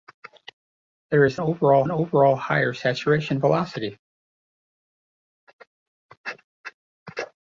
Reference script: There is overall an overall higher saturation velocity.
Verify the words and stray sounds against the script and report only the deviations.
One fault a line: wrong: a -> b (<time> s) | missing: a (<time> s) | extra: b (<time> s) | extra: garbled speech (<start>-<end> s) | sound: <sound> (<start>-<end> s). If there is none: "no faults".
no faults